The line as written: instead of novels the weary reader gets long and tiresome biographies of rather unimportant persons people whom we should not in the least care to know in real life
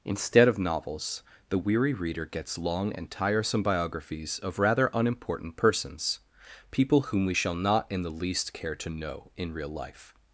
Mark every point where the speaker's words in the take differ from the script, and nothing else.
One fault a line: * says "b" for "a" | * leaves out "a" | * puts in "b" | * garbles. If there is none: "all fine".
* says "shall" for "should"